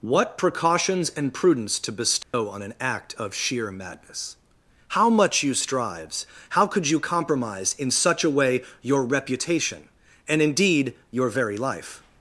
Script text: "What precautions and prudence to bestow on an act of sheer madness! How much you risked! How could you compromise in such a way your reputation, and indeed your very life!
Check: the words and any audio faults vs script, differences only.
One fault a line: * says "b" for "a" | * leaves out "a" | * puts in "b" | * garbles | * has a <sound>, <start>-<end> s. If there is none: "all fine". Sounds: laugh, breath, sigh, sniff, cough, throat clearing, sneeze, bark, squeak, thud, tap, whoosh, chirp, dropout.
* has a dropout, 2.2-2.3 s
* says "strives" for "risked"